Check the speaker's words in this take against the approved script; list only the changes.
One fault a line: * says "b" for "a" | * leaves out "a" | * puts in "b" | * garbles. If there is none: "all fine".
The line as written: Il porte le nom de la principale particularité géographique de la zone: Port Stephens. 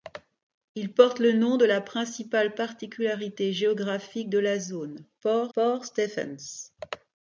* puts in "Port"